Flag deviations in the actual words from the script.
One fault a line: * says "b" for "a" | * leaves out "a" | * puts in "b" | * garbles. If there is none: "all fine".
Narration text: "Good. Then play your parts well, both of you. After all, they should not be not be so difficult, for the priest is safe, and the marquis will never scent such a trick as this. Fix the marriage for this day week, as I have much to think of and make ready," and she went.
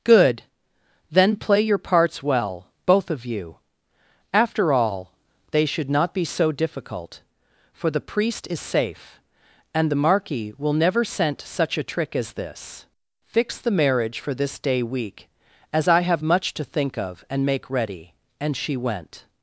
* leaves out "not be"